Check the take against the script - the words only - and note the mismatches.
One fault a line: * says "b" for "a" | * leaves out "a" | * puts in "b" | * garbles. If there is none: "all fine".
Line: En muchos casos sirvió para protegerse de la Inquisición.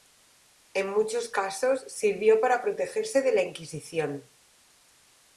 all fine